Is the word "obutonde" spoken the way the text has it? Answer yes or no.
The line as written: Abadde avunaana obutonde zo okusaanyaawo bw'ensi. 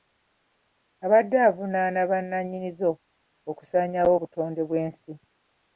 no